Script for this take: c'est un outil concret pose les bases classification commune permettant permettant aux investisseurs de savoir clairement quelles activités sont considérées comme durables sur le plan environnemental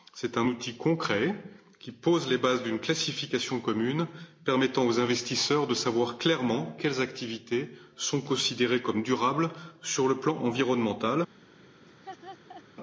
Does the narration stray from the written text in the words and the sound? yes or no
yes